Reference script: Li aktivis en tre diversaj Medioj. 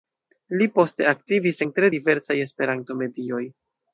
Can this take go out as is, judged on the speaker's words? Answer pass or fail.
fail